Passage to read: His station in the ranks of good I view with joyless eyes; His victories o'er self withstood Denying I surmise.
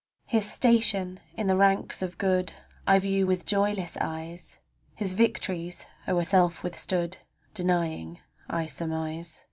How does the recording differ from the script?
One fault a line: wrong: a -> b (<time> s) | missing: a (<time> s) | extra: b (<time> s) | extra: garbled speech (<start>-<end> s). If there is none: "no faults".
no faults